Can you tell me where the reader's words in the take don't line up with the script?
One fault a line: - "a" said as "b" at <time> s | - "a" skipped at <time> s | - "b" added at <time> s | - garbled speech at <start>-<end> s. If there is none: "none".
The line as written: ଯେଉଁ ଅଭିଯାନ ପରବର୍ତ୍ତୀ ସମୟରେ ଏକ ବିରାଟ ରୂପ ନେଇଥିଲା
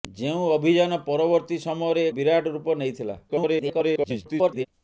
- "ଏକ" skipped at 2.1 s
- garbled speech at 3.3-4.7 s